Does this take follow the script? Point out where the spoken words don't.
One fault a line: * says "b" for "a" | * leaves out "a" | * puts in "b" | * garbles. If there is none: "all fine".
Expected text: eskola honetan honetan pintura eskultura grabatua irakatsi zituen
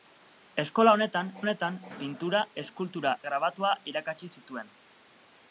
all fine